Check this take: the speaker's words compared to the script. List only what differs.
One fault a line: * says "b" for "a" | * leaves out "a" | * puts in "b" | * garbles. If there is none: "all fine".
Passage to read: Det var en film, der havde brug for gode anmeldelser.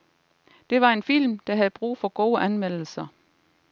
all fine